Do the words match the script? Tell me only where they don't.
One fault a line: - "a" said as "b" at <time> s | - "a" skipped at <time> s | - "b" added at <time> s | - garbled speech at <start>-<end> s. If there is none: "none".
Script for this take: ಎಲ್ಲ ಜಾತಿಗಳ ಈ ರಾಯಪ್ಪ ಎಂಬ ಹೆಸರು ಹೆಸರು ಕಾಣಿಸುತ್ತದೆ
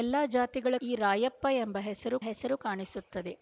none